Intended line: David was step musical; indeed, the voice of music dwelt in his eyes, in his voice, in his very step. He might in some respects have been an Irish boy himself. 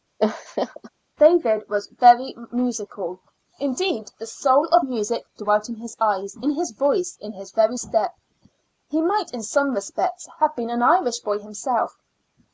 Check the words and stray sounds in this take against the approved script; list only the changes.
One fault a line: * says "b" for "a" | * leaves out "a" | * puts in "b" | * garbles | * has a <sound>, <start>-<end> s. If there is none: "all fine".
* has a laugh, 0.2-0.9 s
* says "very" for "step"
* says "soul" for "voice"